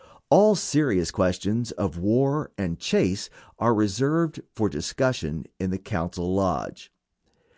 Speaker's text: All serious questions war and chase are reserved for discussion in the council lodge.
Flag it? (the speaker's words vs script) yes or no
yes